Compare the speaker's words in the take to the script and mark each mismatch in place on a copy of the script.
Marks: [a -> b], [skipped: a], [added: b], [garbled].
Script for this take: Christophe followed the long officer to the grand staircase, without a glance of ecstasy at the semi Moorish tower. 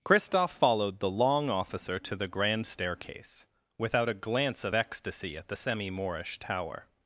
Christophe followed the long officer to the grand staircase, without a glance of ecstasy at the semi Moorish tower.